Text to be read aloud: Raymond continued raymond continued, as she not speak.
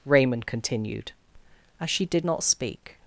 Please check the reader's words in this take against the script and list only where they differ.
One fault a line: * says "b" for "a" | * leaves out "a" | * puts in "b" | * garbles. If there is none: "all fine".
* leaves out "raymond continued"
* puts in "did"